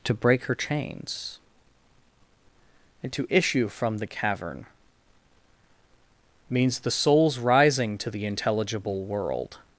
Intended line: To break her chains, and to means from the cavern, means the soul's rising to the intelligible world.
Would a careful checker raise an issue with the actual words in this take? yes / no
yes